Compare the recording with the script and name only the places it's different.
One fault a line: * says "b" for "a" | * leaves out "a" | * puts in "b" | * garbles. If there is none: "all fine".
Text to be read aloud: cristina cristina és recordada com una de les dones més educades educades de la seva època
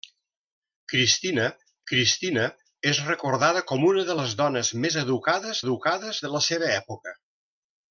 all fine